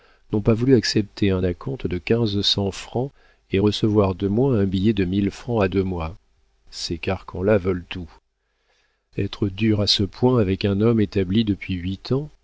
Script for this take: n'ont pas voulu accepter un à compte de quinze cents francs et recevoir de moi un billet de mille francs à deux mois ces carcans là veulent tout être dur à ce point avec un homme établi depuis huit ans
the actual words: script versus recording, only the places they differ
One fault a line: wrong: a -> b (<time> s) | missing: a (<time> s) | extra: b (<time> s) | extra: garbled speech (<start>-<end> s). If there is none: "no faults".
no faults